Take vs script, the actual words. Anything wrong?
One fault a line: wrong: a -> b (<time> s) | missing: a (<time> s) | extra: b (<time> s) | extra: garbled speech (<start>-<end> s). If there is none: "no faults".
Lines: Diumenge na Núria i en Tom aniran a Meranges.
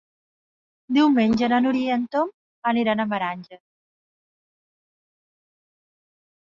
no faults